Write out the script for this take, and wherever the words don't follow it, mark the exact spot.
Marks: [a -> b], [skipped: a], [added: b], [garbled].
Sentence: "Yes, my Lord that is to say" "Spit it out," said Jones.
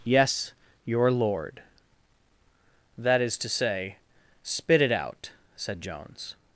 "Yes, [my -> your] Lord that is to say" "Spit it out," said Jones.